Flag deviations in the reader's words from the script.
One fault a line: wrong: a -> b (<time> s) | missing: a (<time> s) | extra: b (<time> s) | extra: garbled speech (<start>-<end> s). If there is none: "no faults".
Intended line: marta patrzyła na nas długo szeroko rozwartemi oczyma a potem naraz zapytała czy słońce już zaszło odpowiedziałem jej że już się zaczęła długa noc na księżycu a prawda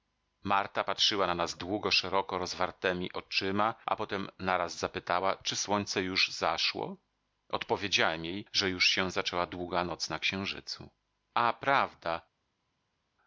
no faults